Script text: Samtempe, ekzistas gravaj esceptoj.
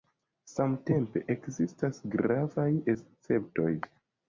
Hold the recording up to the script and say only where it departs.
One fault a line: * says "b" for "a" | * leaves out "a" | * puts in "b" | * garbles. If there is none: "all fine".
all fine